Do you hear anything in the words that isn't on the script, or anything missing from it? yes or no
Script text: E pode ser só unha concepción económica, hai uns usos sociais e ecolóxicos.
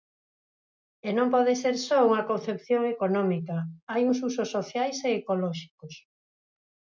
yes